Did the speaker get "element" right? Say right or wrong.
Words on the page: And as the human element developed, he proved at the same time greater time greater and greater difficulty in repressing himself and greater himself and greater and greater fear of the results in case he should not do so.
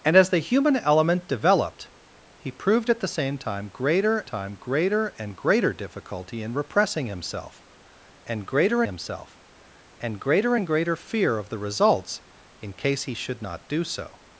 right